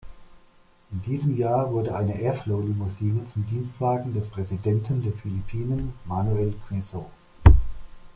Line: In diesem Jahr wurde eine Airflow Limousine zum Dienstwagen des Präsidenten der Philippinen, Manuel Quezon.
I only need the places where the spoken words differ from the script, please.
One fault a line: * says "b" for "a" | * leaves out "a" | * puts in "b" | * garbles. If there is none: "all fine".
all fine